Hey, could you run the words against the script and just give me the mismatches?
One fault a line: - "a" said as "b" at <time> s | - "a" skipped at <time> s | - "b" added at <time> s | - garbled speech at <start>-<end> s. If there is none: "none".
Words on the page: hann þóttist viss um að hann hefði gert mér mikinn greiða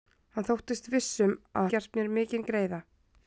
- "hann hefði" skipped at 1.7 s